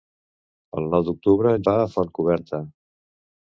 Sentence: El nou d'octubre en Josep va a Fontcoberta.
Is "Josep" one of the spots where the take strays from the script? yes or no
yes